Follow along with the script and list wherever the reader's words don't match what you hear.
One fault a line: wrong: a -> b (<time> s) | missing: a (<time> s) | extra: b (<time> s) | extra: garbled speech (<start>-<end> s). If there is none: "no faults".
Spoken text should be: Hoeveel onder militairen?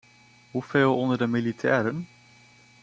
extra: de (1.2 s)